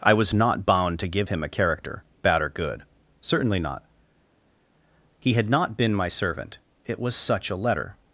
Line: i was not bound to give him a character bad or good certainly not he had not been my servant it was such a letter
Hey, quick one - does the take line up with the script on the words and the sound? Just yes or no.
yes